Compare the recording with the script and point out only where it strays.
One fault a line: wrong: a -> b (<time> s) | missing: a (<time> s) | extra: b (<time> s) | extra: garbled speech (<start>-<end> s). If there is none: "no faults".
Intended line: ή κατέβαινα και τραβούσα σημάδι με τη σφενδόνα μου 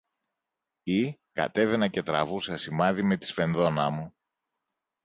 no faults